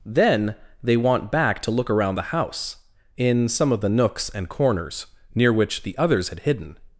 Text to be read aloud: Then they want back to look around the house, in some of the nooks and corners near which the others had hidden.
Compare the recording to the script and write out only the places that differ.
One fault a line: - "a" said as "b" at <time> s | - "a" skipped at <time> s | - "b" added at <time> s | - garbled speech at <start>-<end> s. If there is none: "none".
none